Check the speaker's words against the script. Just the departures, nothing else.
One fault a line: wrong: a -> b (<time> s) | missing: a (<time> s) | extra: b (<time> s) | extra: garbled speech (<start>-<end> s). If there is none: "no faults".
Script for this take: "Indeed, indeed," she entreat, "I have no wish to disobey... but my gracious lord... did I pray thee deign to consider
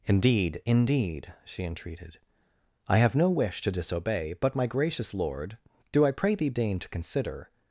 wrong: entreat -> entreated (1.6 s)
wrong: did -> do (5.9 s)